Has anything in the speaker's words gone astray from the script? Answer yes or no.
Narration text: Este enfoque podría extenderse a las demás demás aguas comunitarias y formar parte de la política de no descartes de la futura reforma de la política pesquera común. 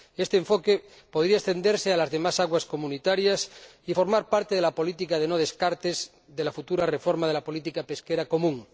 yes